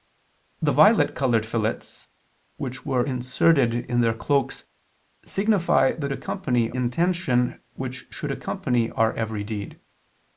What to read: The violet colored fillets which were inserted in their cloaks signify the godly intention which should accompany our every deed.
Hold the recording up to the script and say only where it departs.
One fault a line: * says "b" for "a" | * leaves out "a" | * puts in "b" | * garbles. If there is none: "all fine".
* says "accompany" for "godly"